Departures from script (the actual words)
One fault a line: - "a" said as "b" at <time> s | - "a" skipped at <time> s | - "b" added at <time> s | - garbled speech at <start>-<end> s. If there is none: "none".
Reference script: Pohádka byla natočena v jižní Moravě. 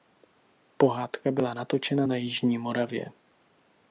- "v" said as "na" at 2.0 s